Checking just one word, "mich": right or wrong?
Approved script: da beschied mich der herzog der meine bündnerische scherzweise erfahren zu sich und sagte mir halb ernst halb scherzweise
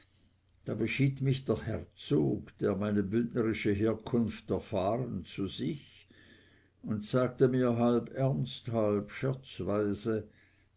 right